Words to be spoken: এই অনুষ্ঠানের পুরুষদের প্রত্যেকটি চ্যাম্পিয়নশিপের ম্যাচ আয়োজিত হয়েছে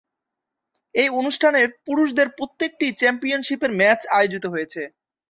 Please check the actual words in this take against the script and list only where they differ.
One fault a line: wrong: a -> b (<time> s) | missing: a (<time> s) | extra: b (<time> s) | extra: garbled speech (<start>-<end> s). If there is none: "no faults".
no faults